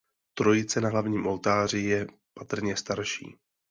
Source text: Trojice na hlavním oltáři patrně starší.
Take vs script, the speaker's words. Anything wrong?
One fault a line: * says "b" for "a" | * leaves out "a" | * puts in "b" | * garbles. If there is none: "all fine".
* puts in "je"